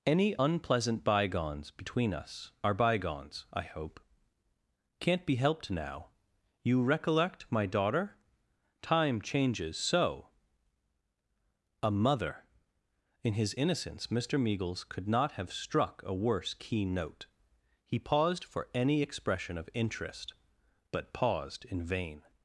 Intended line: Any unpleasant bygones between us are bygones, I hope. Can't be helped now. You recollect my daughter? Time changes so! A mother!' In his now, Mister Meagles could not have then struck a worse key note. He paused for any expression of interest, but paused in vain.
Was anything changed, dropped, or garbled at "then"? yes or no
yes